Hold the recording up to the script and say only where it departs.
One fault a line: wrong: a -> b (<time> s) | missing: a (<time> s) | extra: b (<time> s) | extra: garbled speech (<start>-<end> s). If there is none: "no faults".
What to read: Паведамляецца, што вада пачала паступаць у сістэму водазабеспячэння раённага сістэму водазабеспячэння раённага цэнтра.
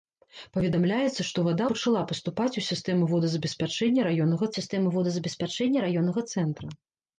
no faults